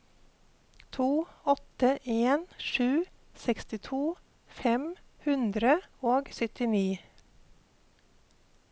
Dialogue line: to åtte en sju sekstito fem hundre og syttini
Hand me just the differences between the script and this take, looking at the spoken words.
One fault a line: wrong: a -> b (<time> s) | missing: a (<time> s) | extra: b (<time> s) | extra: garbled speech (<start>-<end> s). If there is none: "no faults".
no faults